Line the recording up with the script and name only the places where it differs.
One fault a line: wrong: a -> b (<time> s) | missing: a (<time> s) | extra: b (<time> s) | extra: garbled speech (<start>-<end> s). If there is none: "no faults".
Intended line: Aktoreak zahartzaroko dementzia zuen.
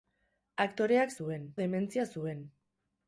wrong: zahartzaroko -> zuen (1.2 s)